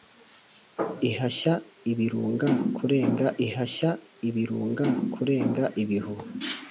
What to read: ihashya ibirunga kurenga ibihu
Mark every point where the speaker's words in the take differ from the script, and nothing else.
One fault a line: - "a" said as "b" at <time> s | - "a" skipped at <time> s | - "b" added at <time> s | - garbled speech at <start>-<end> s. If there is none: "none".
- "ihashya ibirunga kurenga" added at 3.5 s